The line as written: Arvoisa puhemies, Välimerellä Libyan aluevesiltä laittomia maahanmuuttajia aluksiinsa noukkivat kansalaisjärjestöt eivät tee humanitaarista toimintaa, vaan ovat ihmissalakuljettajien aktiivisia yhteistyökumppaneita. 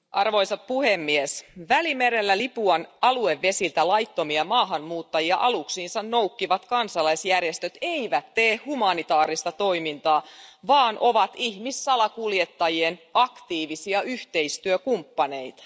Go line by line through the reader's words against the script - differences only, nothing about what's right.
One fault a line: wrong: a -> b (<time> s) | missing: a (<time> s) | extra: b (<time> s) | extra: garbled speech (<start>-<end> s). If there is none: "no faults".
no faults